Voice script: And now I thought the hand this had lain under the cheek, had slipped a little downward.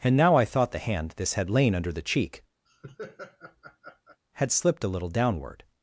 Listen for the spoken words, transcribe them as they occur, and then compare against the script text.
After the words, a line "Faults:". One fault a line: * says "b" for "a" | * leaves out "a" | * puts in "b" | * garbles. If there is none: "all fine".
And now I thought the hand this had lain under the cheek, had slipped a little downward.
Faults:
all fine